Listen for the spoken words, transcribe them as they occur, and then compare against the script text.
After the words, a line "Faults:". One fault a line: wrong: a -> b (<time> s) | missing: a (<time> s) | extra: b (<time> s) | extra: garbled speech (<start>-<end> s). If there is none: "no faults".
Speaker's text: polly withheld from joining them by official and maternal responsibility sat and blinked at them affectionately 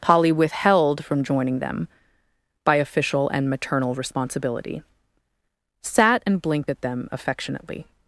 polly withheld from joining them by official and maternal responsibility sat and blinked at them affectionately
Faults:
no faults